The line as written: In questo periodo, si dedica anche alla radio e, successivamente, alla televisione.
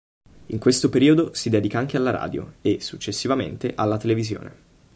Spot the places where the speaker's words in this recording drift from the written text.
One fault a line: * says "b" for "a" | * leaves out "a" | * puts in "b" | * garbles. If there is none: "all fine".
all fine